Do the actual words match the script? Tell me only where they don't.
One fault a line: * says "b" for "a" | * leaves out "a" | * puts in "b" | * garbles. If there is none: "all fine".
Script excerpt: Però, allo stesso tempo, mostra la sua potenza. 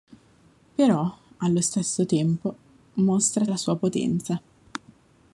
all fine